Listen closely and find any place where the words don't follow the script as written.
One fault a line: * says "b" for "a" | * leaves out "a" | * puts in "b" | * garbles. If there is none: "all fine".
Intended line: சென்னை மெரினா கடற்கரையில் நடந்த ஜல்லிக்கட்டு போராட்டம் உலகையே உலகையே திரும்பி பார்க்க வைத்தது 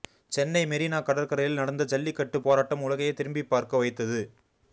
* leaves out "உலகையே"